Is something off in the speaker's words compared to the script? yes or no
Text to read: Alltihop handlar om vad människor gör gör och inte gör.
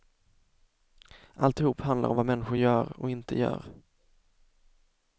yes